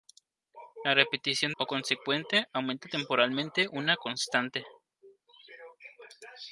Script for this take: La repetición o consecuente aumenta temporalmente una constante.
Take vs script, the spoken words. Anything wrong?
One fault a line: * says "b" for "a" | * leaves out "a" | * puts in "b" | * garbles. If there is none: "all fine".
all fine